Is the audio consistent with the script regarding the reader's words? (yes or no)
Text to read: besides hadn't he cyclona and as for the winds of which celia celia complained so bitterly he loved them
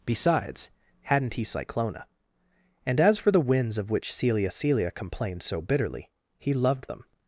yes